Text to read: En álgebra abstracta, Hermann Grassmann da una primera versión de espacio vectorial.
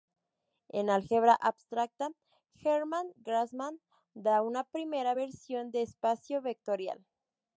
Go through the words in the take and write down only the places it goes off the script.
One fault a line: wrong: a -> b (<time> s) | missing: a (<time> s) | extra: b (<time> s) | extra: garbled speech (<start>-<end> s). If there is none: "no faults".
no faults